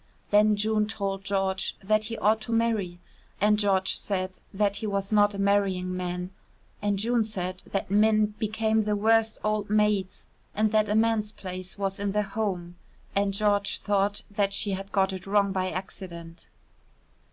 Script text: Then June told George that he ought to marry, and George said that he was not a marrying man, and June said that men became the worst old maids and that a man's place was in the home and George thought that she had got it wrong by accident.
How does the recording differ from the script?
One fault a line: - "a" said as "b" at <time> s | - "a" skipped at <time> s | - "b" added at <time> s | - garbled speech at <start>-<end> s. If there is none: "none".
none